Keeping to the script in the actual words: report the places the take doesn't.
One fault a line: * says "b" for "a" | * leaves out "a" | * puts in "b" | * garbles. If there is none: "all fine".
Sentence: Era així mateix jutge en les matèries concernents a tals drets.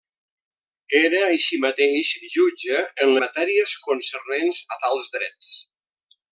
* leaves out "les"